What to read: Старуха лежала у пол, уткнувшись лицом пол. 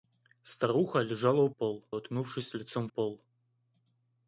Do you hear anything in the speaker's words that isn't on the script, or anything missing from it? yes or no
no